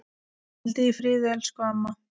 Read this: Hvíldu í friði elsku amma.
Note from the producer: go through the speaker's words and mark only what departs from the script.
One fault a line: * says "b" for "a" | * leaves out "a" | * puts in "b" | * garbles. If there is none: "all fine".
all fine